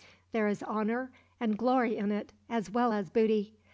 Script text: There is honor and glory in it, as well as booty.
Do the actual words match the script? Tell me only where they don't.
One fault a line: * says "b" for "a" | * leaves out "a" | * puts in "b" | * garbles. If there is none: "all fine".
all fine